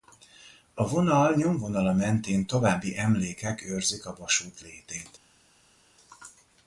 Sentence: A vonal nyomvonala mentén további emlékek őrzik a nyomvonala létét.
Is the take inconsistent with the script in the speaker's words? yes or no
yes